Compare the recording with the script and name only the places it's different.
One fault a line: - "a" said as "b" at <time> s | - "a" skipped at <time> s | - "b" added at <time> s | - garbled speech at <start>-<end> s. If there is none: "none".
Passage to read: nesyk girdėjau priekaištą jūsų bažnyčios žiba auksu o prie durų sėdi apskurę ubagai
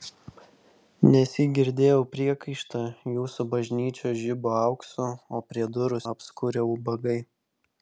- "sėdi" skipped at 6.0 s